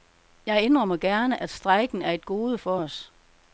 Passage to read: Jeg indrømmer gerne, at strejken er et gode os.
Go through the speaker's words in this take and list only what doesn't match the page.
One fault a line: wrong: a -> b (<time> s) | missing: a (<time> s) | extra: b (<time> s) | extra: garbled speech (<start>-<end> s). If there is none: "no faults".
extra: for (2.6 s)